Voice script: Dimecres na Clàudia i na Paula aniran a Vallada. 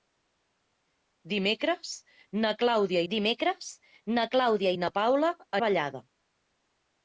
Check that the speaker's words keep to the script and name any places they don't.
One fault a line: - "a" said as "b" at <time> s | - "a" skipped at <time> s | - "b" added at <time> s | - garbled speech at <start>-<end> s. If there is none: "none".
- "dimecres na Clàudia" added at 3.1 s
- "aniran" skipped at 5.3 s